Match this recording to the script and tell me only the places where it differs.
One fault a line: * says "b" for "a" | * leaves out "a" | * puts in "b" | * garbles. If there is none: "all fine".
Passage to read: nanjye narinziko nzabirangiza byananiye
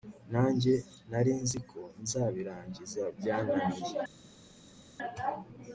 all fine